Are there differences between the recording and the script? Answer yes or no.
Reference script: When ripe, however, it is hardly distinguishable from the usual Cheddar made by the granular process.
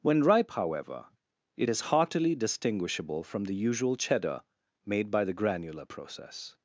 yes